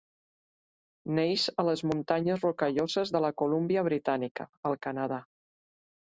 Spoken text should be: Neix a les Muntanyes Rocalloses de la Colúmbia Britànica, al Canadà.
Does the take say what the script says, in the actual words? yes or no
yes